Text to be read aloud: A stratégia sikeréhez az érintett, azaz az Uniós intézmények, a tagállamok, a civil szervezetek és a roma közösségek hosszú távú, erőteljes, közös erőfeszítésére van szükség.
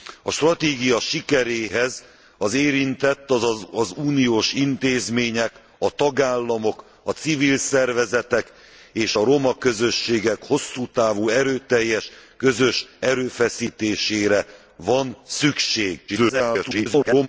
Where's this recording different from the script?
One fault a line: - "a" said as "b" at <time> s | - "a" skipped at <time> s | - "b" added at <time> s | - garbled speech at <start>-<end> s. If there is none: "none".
- garbled speech at 16.1-17.3 s